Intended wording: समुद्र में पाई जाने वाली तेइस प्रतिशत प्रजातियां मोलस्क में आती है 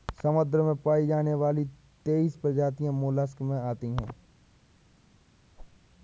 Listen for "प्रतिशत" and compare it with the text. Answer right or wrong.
wrong